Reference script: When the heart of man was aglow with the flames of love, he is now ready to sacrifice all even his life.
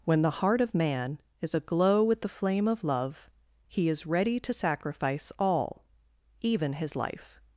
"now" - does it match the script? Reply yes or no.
no